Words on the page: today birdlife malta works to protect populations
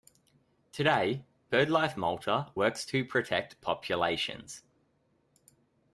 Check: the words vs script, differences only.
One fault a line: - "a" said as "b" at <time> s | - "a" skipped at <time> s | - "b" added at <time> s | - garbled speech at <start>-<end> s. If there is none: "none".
none